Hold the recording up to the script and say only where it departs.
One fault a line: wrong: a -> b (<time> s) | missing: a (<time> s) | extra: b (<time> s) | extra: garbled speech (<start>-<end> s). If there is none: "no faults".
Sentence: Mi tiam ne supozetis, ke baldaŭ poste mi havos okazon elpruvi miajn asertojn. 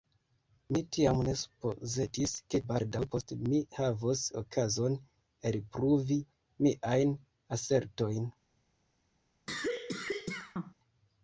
no faults